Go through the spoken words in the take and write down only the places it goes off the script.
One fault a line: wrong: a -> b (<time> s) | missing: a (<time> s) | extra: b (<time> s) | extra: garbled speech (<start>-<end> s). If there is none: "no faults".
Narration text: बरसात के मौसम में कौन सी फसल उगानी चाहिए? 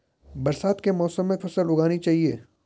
missing: कौन सी (1.4 s)